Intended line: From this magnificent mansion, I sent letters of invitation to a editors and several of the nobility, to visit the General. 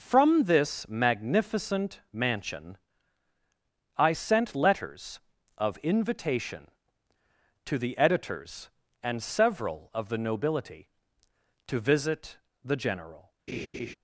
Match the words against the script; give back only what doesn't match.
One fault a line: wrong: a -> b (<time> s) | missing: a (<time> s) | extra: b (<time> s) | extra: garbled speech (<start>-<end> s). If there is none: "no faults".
wrong: a -> the (7.8 s)